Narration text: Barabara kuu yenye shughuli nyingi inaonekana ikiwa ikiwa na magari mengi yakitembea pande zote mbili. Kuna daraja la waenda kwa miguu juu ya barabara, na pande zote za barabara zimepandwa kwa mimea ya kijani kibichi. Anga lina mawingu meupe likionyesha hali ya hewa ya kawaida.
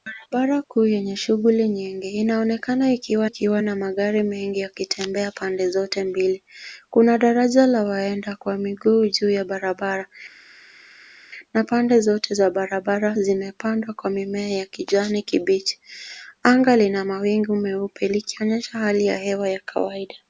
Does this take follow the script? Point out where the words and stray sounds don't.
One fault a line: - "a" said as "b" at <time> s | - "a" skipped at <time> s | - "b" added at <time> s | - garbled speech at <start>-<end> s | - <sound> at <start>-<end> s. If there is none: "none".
none